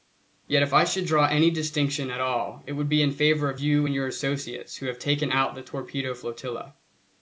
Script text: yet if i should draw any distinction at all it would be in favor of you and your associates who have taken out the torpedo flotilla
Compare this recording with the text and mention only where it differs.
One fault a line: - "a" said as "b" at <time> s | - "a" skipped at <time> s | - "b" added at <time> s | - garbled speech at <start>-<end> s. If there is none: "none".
none